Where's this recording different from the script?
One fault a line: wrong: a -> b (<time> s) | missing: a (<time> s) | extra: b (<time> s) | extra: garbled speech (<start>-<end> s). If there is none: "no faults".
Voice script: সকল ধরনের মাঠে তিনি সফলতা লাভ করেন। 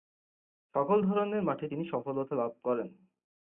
no faults